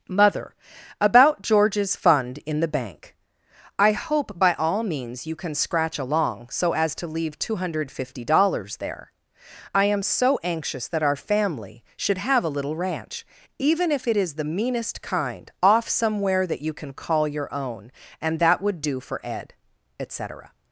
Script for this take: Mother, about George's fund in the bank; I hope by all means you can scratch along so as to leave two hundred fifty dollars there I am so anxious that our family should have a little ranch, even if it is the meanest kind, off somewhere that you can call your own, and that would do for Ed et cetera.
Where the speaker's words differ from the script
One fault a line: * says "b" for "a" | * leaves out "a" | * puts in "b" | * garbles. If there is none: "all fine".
all fine